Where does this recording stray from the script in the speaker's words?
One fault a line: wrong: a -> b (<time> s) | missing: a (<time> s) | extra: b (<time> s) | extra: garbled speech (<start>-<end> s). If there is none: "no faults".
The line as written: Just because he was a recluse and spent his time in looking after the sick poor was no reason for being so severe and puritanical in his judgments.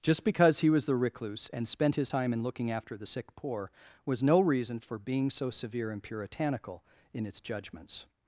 wrong: a -> the (0.8 s)
wrong: his -> its (7.3 s)